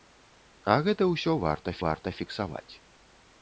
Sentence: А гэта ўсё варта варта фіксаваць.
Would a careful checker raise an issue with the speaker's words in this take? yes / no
no